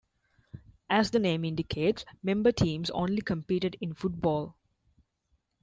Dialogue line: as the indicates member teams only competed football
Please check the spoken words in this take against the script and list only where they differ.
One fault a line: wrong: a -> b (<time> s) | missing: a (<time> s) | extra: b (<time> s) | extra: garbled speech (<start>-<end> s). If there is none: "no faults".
extra: name (1.2 s)
extra: in (3.8 s)